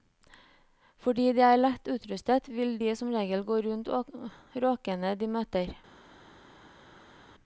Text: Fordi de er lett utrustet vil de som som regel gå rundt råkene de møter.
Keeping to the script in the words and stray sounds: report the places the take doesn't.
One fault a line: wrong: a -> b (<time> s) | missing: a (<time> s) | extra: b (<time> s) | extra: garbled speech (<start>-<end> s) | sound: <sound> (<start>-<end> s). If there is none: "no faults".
missing: som (3.1 s)